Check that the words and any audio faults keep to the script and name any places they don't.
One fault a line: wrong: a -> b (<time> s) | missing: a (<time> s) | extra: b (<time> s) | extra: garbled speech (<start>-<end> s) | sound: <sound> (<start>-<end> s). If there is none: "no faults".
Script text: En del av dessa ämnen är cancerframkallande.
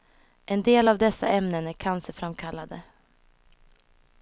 no faults